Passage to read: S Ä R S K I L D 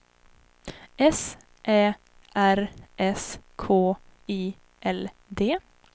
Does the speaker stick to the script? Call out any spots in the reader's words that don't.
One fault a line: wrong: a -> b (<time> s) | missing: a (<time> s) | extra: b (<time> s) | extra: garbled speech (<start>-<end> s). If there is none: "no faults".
no faults